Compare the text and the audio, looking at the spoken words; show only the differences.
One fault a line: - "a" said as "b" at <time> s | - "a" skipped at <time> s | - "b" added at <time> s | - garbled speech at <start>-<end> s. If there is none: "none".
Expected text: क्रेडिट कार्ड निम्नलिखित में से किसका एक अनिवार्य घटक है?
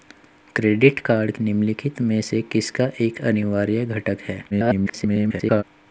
- garbled speech at 4.5-5.6 s